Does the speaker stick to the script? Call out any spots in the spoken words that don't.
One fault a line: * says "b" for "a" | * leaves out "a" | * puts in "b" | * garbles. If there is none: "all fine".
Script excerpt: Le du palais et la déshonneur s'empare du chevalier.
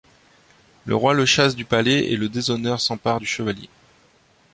* puts in "roi le chasse"
* says "le" for "la"